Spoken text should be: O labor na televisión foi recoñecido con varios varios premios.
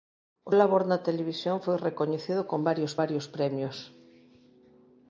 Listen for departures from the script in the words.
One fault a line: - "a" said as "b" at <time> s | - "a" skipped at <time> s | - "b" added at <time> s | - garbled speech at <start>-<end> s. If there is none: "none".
none